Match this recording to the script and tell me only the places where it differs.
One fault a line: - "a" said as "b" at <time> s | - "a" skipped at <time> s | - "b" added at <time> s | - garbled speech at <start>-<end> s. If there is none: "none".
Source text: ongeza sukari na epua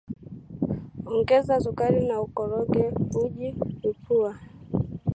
- "ukoroge uji" added at 2.3 s